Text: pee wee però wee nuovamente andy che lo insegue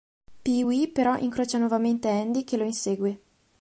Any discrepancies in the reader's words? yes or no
yes